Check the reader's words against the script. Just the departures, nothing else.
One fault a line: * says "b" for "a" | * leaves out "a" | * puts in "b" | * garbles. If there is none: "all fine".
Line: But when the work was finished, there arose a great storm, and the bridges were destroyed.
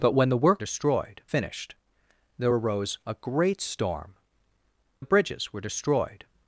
* says "destroyed" for "was"
* leaves out "and"